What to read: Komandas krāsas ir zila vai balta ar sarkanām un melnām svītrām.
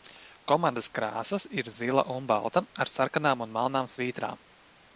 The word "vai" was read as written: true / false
false